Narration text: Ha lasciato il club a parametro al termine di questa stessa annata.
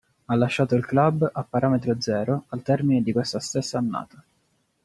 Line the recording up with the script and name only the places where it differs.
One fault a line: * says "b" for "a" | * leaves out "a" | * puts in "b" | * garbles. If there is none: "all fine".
* puts in "zero"